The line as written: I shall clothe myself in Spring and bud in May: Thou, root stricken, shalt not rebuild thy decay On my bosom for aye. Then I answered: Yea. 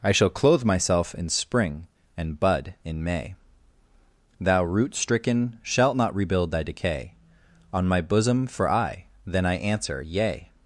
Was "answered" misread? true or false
true